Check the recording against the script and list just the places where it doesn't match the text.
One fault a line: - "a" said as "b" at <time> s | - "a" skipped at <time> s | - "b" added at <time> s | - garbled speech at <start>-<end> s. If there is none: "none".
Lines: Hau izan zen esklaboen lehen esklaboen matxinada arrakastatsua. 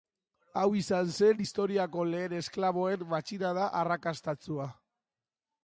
- "esklaboen" said as "historiako" at 1.4 s